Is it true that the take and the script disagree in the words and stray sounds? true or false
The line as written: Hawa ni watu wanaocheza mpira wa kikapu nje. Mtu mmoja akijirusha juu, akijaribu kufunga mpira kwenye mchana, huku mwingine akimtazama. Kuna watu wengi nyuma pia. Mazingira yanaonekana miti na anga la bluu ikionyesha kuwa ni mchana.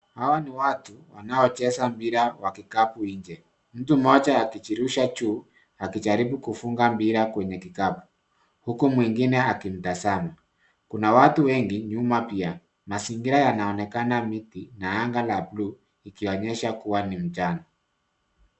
true